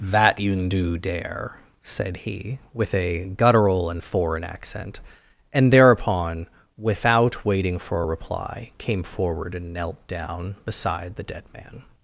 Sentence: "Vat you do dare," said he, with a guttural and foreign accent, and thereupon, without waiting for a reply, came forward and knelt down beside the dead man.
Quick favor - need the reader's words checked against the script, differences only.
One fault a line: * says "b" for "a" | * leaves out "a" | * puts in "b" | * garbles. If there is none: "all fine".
* says "That" for "Vat"